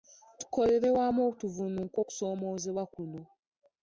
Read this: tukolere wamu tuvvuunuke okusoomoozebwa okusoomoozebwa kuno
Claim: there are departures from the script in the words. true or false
true